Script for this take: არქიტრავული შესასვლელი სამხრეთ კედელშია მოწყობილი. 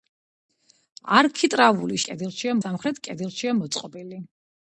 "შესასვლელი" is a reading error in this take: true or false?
true